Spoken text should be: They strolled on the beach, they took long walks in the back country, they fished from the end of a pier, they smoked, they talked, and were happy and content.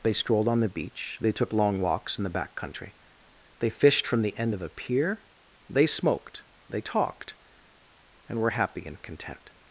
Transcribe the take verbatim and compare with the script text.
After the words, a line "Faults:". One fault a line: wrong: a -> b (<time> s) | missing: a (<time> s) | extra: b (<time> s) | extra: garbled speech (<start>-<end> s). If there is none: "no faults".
They strolled on the beach, they took long walks in the back country, they fished from the end of a pier, they smoked, they talked, and were happy and content.
Faults:
no faults